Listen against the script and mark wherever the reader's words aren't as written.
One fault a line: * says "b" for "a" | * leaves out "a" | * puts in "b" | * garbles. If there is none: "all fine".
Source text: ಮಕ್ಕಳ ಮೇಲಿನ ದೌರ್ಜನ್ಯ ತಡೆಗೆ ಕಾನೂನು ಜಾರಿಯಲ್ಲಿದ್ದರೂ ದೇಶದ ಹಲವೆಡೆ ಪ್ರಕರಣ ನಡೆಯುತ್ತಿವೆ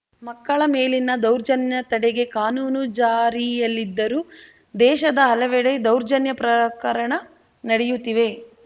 * puts in "ದೌರ್ಜನ್ಯ"